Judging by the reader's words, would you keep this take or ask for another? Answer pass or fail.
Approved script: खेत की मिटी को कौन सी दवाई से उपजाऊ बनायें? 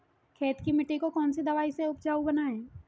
pass